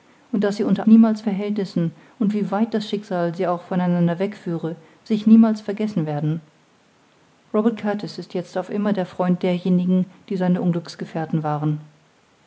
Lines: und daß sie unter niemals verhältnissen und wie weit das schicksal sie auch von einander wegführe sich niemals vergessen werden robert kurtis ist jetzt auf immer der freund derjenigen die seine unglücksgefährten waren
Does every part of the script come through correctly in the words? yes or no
yes